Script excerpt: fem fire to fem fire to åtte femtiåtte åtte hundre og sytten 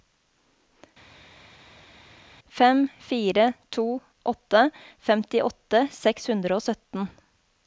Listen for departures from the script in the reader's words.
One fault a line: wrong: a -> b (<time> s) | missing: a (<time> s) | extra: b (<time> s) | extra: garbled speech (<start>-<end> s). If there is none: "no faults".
missing: fem fire to (3.8 s)
wrong: åtte -> seks (6.0 s)